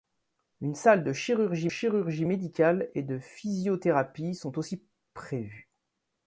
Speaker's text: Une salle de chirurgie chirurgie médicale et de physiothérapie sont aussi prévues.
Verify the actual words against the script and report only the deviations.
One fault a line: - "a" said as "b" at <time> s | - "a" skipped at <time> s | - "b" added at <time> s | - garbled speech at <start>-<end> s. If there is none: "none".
none